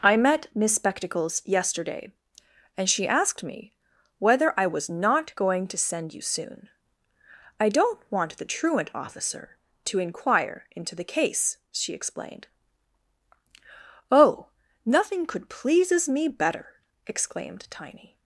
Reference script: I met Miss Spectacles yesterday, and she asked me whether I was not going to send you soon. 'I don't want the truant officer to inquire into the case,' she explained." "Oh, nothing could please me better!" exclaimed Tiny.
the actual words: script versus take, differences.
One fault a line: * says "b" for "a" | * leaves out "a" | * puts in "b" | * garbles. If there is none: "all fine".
* says "pleases" for "please"